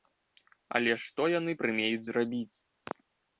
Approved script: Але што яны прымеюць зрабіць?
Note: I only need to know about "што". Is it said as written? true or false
true